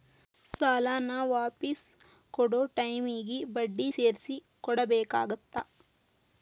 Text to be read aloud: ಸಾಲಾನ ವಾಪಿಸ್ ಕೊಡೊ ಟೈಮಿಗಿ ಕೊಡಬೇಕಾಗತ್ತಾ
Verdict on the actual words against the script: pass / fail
fail